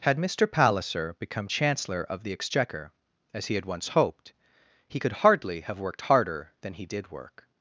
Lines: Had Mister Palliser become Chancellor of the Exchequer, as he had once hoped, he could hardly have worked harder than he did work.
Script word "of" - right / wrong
right